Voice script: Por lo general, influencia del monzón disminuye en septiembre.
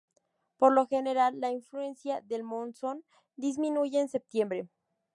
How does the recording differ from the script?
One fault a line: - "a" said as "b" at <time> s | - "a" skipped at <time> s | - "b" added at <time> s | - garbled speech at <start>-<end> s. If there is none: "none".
- "la" added at 1.4 s